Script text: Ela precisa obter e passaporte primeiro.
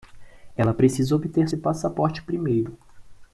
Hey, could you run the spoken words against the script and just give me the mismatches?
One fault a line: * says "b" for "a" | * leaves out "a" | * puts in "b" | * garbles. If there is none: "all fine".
all fine